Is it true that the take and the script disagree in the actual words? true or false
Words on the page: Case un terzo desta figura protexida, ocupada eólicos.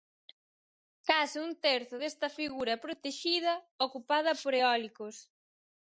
true